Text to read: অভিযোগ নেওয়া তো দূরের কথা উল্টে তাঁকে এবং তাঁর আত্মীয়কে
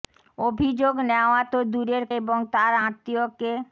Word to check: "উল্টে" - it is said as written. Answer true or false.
false